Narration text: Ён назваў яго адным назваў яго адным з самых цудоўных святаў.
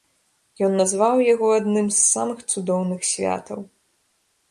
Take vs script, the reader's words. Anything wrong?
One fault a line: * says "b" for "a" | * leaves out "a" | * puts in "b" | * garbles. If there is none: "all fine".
* leaves out "назваў яго адным"